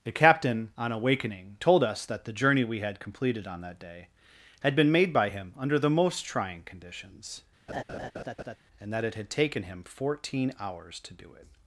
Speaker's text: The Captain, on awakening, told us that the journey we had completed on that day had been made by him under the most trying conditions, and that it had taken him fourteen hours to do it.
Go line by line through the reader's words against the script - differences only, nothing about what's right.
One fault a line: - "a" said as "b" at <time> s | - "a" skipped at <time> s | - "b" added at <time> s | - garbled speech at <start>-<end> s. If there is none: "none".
none